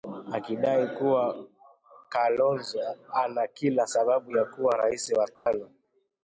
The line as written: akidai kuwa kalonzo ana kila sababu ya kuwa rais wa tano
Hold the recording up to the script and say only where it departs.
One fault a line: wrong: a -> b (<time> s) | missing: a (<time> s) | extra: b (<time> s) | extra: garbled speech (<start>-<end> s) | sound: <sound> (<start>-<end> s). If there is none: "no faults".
sound: dropout (5.3-5.5 s)